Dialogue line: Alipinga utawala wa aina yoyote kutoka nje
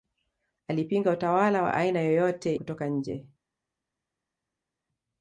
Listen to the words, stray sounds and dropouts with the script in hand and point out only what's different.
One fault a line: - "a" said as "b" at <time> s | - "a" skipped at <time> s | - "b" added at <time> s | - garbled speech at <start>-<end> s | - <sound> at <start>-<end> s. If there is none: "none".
none